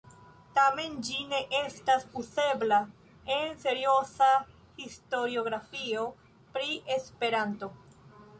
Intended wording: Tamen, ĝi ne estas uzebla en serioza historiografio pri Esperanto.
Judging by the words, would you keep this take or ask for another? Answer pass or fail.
pass